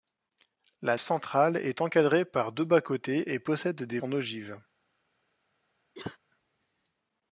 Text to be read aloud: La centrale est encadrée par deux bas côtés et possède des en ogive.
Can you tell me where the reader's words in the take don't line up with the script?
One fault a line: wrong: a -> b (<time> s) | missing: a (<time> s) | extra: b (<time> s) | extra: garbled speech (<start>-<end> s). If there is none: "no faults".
no faults